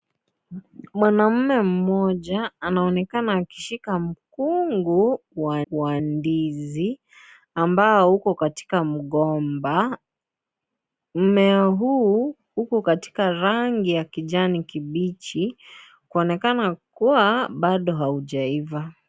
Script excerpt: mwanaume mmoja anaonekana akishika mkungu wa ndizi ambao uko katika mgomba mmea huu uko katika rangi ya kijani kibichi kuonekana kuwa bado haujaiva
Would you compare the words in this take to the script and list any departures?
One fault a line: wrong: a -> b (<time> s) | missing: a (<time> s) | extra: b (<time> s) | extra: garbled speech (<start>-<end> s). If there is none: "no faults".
extra: wa (5.7 s)